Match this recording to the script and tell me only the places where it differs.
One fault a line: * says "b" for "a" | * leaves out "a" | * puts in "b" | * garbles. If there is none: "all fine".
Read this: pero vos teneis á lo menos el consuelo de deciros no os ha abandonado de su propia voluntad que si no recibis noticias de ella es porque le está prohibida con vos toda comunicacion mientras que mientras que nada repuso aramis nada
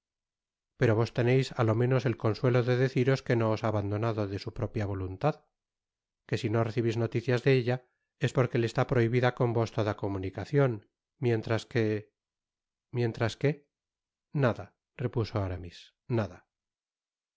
* puts in "que"